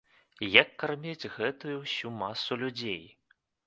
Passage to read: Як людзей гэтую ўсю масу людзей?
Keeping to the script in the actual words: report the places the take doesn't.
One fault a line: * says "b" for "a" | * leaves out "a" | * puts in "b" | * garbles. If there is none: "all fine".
* says "карміць" for "людзей"